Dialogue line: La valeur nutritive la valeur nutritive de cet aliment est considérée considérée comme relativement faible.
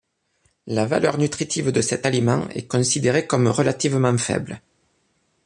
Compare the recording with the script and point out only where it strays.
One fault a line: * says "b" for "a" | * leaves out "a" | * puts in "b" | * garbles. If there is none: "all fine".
* leaves out "la valeur nutritive"
* leaves out "considérée"